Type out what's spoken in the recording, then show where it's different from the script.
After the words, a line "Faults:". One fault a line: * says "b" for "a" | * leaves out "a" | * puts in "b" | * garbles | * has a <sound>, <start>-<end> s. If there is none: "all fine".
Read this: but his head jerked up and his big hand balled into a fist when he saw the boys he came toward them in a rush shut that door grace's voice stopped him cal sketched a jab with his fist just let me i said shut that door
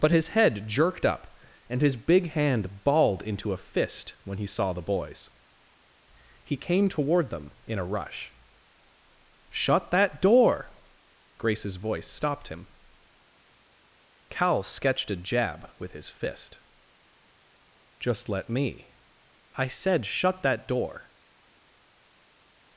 but his head jerked up and his big hand balled into a fist when he saw the boys he came toward them in a rush shut that door grace's voice stopped him cal sketched a jab with his fist just let me i said shut that door
Faults:
all fine